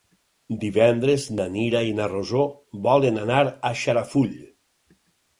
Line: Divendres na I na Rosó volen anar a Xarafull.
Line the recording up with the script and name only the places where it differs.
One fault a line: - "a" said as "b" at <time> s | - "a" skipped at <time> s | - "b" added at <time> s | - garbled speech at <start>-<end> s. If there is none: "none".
- "Mira" added at 1.6 s